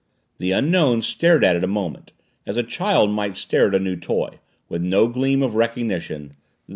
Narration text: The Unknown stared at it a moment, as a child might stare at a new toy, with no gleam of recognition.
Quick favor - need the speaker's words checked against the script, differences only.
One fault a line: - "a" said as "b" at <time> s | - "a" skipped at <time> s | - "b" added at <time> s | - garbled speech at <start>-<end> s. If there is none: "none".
none